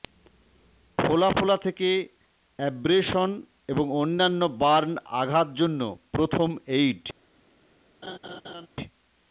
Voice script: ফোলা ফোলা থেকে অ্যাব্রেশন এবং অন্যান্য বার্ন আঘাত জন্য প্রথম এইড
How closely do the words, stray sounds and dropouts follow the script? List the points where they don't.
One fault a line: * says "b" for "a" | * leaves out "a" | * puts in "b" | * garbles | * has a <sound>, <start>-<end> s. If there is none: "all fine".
* has a laugh, 8.0-8.7 s